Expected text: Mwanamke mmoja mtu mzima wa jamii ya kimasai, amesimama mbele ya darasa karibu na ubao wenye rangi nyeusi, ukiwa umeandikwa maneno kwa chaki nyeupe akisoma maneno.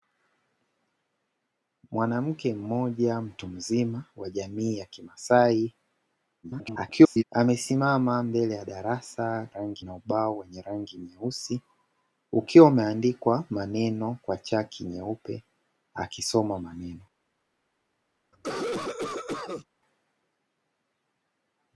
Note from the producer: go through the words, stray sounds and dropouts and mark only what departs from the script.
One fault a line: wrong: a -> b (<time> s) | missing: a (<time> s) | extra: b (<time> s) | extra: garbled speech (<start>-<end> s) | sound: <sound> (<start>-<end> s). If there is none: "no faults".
extra: garbled speech (6.4-7.2 s)
wrong: karibu -> rangi (9.5 s)
sound: cough (18.3-19.7 s)